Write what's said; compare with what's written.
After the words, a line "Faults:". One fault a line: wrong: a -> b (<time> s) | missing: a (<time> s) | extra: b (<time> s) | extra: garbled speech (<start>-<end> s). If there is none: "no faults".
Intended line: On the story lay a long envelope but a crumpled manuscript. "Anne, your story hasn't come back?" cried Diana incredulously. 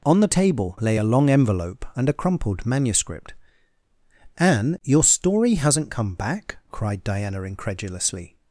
On the table lay a long envelope and a crumpled manuscript. "Anne, your story hasn't come back?" cried Diana incredulously.
Faults:
wrong: story -> table (0.3 s)
wrong: but -> and (2.0 s)